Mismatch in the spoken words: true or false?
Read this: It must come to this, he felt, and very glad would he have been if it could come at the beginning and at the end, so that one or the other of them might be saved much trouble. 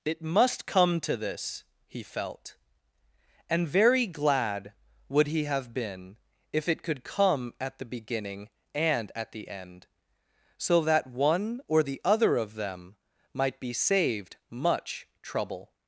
false